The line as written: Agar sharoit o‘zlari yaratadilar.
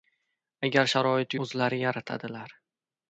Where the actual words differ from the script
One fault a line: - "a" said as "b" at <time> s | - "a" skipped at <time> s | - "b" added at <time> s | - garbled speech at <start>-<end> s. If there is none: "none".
none